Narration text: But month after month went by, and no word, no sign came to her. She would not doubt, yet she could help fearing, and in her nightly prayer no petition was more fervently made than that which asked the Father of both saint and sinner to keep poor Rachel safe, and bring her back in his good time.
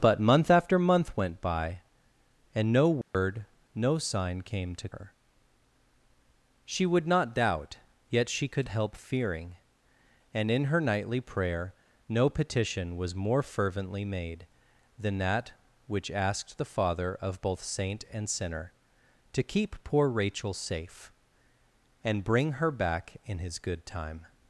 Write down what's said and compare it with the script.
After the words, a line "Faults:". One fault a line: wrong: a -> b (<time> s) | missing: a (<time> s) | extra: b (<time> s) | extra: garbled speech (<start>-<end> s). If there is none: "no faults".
But month after month went by, and no word, no sign came to her. She would not doubt, yet she could help fearing, and in her nightly prayer no petition was more fervently made than that which asked the Father of both saint and sinner to keep poor Rachel safe, and bring her back in his good time.
Faults:
no faults